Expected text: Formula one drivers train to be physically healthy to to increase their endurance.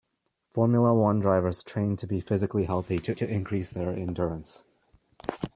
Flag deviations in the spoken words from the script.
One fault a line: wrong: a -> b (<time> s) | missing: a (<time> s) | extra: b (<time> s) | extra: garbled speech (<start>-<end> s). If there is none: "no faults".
no faults